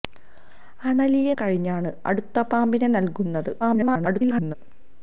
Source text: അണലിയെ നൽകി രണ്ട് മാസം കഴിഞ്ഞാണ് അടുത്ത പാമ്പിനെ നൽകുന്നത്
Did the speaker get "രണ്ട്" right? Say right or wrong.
wrong